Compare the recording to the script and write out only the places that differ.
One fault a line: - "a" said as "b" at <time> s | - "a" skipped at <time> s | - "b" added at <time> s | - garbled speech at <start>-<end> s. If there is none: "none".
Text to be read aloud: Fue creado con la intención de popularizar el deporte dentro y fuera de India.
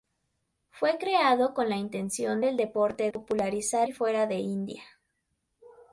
- "de popularizar" skipped at 2.4 s
- "dentro" said as "popularizar" at 3.1 s